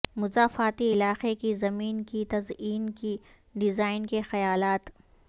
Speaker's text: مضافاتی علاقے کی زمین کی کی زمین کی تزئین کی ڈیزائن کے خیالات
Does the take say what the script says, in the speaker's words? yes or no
no